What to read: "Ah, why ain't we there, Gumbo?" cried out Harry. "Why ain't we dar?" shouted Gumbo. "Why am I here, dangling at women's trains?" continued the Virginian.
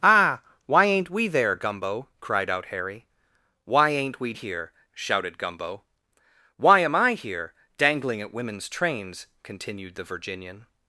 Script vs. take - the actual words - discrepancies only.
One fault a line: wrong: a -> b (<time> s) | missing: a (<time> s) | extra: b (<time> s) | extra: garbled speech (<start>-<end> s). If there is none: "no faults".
wrong: dar -> here (4.3 s)